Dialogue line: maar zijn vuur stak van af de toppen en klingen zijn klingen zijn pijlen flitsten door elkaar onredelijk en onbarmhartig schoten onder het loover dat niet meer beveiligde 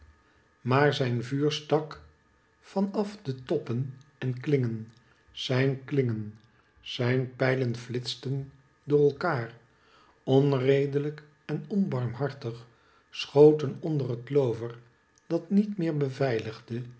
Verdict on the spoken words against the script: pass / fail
pass